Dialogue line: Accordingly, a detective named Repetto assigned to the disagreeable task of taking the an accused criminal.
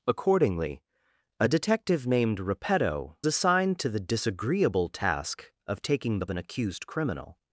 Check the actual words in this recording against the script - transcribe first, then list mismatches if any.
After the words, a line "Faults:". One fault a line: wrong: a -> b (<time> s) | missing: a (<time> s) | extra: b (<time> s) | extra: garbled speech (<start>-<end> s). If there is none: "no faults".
Accordingly, a detective named Repetto assigned to the disagreeable task of taking the an accused criminal.
Faults:
no faults